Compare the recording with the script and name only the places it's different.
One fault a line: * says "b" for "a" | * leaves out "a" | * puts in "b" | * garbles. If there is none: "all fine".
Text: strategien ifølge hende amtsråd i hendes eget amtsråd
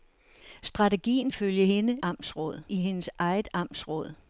all fine